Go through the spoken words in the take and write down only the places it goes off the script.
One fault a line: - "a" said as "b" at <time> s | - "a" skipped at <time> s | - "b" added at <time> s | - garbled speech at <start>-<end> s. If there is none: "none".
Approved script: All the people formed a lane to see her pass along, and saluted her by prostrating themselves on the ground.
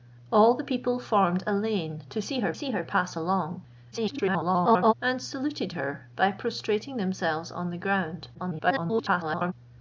- "see her" added at 2.5 s
- garbled speech at 3.9-4.9 s
- garbled speech at 8.3-9.5 s